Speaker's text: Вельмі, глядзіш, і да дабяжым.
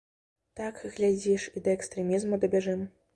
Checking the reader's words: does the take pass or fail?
fail